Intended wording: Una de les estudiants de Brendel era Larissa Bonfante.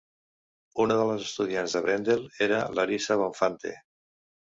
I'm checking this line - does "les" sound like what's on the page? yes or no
yes